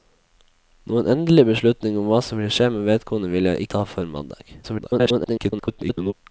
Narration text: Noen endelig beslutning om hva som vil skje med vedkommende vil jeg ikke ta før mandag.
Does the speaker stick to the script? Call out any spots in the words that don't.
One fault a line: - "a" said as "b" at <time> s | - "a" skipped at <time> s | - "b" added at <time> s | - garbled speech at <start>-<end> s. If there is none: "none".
- "ikke" skipped at 3.7 s
- garbled speech at 4.6-6.1 s